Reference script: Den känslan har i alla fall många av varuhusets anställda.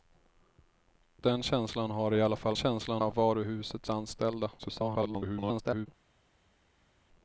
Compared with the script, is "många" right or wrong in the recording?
wrong